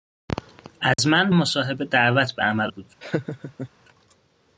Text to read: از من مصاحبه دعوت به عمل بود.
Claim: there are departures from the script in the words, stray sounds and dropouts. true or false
true